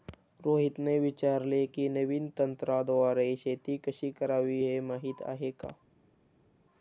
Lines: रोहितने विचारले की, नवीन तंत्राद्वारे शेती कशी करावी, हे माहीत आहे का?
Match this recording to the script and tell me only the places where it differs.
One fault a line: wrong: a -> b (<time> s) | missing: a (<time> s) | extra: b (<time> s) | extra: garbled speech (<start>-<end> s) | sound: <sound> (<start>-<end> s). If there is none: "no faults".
no faults